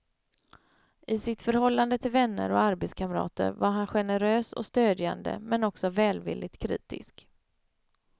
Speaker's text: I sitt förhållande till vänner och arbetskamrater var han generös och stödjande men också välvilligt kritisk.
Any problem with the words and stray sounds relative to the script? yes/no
no